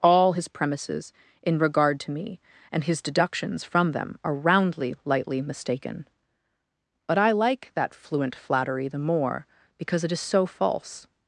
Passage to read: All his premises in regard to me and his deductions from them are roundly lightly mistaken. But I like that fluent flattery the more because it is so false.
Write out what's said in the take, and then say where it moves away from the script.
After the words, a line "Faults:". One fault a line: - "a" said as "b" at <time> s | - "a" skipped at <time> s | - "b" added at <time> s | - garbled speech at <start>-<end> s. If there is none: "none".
All his premises in regard to me and his deductions from them are roundly lightly mistaken. But I like that fluent flattery the more because it is so false.
Faults:
none